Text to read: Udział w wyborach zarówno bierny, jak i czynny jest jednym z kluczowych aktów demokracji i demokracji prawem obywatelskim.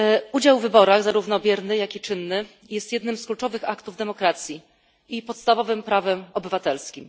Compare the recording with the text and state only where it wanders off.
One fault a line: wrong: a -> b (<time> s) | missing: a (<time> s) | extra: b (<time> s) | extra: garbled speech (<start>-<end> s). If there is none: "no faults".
wrong: demokracji -> podstawowym (5.2 s)